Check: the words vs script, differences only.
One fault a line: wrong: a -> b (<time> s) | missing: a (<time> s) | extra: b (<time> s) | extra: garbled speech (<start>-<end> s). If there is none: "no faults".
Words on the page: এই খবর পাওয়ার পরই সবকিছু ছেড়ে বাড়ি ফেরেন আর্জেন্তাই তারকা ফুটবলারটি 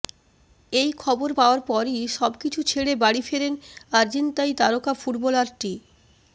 no faults